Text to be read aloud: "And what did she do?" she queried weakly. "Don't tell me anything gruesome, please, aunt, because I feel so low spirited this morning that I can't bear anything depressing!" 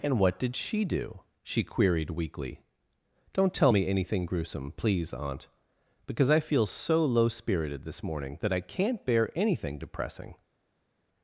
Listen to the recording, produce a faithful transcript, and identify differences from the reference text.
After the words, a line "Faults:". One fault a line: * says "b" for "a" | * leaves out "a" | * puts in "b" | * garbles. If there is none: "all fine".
"And what did she do?" she queried weakly. "Don't tell me anything gruesome, please, aunt, because I feel so low spirited this morning that I can't bear anything depressing!"
Faults:
all fine